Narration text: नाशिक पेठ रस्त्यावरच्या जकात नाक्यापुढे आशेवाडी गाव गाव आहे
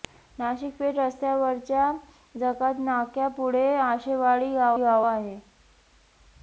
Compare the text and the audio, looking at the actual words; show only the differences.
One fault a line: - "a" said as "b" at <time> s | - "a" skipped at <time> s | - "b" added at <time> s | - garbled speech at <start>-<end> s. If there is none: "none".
none